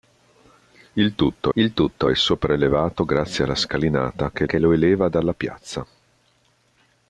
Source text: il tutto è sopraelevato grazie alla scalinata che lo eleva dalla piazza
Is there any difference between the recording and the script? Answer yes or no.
yes